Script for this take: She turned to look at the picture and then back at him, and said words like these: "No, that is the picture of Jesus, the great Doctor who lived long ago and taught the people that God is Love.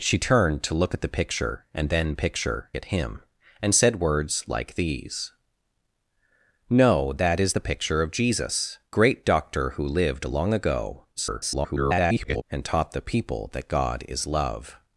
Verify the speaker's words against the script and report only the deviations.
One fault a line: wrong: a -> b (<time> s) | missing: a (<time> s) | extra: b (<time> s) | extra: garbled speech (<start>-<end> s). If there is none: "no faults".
wrong: back -> picture (2.1 s)
missing: the (8.8 s)
extra: garbled speech (11.2-12.4 s)